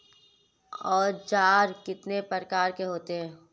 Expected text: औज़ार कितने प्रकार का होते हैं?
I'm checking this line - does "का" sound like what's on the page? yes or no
no